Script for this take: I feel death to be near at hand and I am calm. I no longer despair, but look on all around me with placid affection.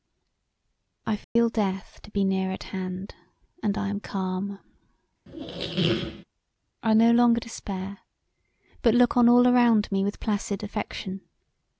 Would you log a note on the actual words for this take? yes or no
no